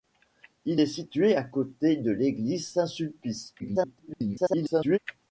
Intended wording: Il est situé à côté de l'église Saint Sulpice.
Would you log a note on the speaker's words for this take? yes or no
yes